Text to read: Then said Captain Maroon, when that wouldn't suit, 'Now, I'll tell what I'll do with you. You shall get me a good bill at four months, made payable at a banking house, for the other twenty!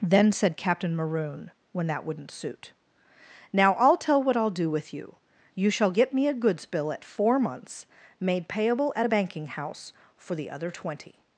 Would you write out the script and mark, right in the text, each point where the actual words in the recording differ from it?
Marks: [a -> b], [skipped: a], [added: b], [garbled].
Then said Captain Maroon, when that wouldn't suit, 'Now, I'll tell what I'll do with you. You shall get me a [good -> goods] bill at four months, made payable at a banking house, for the other twenty!